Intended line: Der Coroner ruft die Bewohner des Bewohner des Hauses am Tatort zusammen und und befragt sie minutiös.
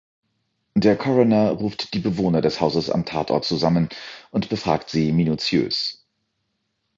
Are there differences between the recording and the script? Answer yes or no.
yes